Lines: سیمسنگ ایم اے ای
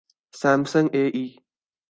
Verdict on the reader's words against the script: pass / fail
fail